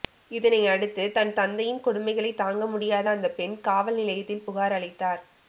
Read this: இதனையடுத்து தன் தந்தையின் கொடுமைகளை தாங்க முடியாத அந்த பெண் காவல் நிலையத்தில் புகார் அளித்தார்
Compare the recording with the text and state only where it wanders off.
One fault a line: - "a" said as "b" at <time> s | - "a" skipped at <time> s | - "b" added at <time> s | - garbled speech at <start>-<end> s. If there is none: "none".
none